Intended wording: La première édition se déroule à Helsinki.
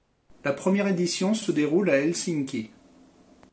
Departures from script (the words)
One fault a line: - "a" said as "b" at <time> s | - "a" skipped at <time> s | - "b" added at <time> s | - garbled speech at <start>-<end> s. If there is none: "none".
- "se" added at 1.4 s